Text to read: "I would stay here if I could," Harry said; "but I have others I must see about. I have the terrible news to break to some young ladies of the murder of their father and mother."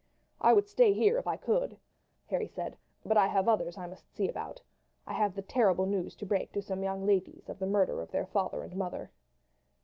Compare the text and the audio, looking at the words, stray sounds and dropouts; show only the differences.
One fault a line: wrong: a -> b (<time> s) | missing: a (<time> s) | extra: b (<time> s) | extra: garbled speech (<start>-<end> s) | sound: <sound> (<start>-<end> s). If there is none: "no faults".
no faults